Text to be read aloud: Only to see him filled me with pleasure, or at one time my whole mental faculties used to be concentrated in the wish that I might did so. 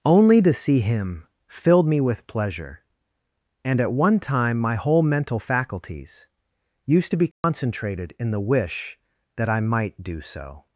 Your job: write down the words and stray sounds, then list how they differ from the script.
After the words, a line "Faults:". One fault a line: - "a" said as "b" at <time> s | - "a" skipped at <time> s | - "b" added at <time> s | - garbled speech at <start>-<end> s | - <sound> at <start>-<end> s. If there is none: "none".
Only to see him filled me with pleasure, and at one time my whole mental faculties used to be concentrated in the wish that I might do so.
Faults:
- "or" said as "and" at 3.6 s
- dropout at 7.3-7.4 s
- "did" said as "do" at 10.0 s